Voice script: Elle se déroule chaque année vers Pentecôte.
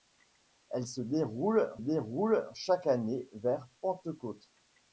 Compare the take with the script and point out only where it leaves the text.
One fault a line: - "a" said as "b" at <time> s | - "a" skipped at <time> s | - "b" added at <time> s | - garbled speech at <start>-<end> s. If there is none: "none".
- "déroule" added at 1.8 s